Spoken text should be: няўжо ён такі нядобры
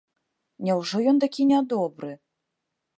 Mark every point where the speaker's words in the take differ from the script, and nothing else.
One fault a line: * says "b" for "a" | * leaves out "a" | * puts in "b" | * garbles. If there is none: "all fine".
all fine